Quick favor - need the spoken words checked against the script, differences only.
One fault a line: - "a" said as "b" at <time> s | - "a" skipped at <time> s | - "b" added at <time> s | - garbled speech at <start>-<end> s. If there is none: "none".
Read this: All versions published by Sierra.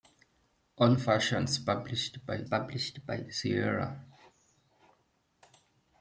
- "published by" added at 2.4 s